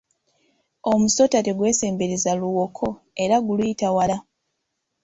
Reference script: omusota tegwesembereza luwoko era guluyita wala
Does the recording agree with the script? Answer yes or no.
yes